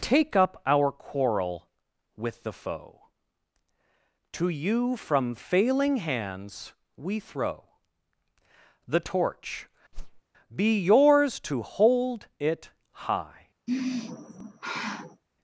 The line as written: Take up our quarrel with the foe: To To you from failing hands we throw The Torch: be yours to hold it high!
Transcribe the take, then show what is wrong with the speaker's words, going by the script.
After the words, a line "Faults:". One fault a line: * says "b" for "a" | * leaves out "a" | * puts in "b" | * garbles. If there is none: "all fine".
Take up our quarrel with the foe: To you from failing hands we throw The Torch: be yours to hold it high!
Faults:
* leaves out "To"